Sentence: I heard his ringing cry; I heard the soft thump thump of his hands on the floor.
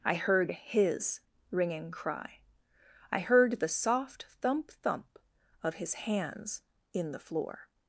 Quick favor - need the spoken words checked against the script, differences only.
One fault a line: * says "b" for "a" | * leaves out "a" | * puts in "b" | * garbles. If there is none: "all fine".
* says "in" for "on"